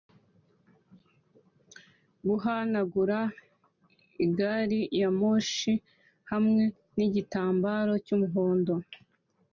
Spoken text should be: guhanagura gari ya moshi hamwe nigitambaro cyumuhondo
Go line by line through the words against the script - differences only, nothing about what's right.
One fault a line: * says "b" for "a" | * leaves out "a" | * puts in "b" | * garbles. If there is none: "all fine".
all fine